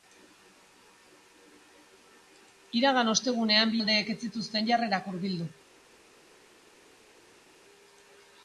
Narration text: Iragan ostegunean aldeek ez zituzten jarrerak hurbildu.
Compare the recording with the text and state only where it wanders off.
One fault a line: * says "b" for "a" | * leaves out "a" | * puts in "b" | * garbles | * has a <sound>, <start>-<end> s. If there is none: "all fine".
all fine